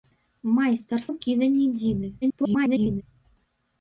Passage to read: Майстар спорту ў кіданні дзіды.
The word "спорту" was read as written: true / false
false